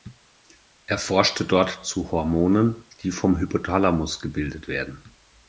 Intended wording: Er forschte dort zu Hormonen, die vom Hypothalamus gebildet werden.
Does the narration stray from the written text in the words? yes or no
no